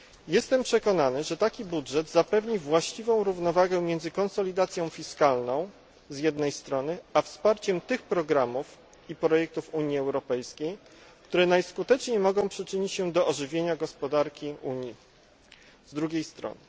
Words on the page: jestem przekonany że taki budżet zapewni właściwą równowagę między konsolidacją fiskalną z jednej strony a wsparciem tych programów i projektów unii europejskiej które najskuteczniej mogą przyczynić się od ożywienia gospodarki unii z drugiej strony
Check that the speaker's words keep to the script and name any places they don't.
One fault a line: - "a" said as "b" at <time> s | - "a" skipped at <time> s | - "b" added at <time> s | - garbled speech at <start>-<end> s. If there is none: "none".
- "od" said as "do" at 13.1 s